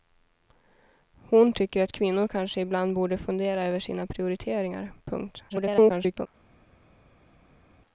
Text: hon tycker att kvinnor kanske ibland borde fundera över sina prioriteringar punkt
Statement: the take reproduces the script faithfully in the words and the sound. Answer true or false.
false